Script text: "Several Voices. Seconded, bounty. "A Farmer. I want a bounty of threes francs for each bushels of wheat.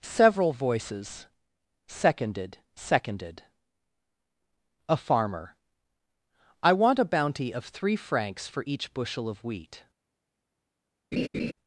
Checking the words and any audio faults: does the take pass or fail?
fail